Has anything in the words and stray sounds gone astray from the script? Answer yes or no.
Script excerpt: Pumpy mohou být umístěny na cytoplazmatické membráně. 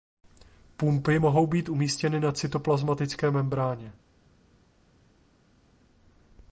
no